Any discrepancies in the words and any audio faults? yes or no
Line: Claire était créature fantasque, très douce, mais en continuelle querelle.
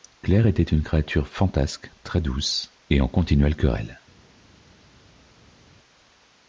yes